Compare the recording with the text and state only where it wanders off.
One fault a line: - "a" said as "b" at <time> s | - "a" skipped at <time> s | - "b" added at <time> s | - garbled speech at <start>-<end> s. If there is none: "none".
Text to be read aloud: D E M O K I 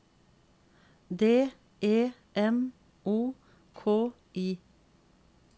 none